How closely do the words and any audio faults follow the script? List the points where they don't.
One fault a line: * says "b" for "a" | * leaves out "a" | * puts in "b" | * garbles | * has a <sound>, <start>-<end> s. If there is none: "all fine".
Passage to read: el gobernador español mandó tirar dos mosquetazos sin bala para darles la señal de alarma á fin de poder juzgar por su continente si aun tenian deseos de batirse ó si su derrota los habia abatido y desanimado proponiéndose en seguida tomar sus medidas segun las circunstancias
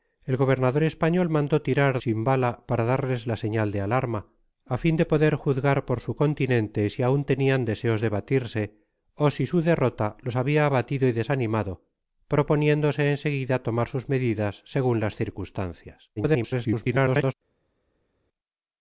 * leaves out "dos mosquetazos"
* garbles